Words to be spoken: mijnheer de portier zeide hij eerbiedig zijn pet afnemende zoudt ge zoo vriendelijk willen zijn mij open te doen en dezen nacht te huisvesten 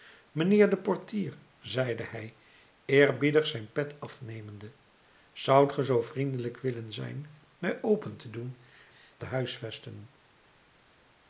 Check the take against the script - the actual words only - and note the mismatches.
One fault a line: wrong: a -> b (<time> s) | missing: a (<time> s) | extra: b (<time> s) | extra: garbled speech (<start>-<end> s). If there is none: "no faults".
missing: en dezen nacht (8.6 s)